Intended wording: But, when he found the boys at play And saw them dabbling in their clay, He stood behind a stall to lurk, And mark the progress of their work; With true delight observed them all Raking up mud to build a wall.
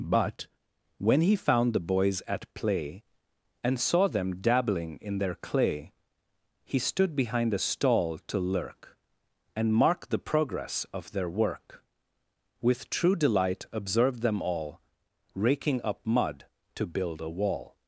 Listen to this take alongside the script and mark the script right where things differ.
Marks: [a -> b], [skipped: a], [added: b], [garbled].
But, when he found the boys at play And saw them dabbling in their clay, He stood behind a stall to lurk, And mark the progress of their work; With true delight observed them all Raking up mud to build a wall.